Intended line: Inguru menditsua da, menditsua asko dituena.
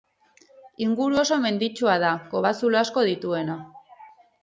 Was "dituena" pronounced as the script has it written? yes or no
yes